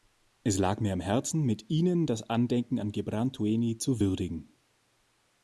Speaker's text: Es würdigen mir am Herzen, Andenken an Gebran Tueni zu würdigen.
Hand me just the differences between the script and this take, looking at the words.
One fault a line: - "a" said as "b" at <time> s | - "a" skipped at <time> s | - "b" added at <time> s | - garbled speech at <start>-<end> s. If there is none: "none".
- "würdigen" said as "lag" at 0.6 s
- "mit Ihnen das" added at 1.4 s